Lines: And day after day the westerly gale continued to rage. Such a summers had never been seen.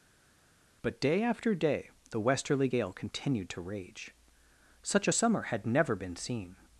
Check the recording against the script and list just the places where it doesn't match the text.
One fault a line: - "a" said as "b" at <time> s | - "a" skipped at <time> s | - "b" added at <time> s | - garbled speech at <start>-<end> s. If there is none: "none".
- "And" said as "But" at 0.8 s
- "summers" said as "summer" at 5.1 s